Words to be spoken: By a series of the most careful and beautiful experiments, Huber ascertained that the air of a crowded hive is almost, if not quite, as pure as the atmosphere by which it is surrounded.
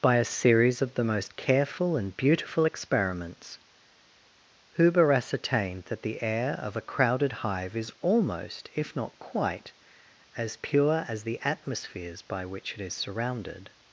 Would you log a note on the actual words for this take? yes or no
yes